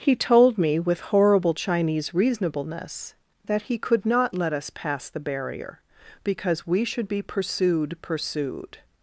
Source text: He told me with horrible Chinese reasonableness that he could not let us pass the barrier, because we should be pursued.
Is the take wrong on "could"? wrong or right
right